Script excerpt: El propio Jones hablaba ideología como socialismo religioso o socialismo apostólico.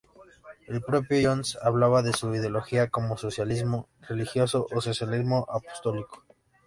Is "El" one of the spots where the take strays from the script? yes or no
no